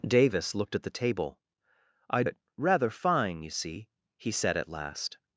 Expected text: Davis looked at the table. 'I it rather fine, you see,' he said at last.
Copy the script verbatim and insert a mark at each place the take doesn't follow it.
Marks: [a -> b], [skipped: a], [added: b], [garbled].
Davis looked at the table. 'I it rather fine, you see,' he said at last.